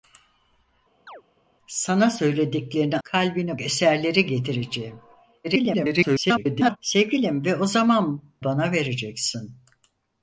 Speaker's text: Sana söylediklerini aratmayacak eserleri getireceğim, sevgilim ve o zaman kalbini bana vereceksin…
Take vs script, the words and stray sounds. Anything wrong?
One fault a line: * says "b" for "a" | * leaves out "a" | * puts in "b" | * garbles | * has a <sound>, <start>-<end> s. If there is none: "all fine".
* has a chirp, 1.1-1.2 s
* says "kalbini" for "aratmayacak"
* garbles
* leaves out "kalbini"